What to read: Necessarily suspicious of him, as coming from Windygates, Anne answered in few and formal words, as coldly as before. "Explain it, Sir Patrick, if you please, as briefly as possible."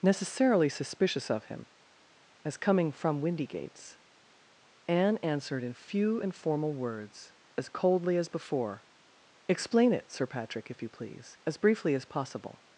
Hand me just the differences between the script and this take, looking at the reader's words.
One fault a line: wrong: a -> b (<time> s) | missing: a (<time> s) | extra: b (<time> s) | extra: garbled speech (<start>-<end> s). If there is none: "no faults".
no faults